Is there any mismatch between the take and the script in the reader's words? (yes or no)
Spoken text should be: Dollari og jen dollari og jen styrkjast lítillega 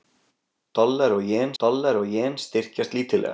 no